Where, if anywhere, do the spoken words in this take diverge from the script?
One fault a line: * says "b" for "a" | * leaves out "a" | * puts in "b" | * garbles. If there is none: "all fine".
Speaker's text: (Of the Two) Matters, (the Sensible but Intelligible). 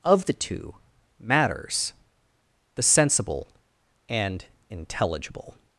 * says "and" for "but"